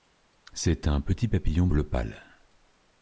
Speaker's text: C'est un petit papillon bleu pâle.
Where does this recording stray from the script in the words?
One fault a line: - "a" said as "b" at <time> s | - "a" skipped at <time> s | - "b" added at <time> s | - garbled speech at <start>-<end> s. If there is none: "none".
none